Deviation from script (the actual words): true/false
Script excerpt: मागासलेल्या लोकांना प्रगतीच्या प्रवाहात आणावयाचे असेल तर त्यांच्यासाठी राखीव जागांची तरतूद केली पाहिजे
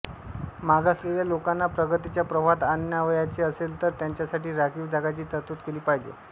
false